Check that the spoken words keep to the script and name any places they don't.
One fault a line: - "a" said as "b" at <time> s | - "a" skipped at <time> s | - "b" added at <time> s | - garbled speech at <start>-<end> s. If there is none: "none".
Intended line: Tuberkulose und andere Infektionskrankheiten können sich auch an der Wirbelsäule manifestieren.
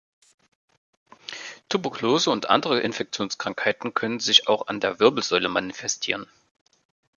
none